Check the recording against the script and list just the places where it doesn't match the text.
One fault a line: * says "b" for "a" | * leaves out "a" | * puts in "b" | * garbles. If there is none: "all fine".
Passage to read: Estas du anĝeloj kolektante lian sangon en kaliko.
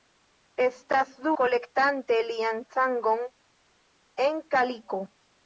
* leaves out "anĝeloj"